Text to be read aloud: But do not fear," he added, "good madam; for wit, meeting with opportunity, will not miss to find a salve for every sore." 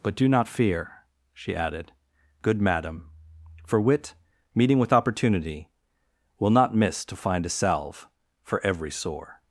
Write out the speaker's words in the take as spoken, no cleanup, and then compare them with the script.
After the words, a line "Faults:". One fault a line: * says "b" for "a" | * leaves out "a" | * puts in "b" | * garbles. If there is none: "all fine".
But do not fear," she added, "good madam; for wit, meeting with opportunity, will not miss to find a salve for every sore."
Faults:
* says "she" for "he"